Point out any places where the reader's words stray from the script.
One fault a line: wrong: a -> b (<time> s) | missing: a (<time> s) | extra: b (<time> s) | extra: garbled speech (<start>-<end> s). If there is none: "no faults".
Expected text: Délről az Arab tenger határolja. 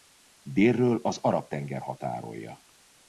no faults